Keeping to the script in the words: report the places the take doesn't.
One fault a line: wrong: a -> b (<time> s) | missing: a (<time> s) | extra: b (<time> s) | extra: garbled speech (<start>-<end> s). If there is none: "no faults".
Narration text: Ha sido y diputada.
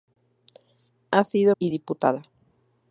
no faults